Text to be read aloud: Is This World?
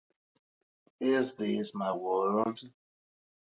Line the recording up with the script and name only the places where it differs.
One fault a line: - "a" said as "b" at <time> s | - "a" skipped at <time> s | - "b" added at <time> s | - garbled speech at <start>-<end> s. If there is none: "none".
- "My" added at 1.8 s